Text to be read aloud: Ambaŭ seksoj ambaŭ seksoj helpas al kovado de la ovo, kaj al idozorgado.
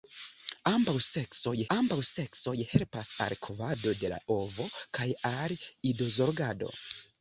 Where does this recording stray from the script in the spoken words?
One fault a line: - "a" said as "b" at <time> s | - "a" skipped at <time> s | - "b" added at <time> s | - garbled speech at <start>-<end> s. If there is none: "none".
none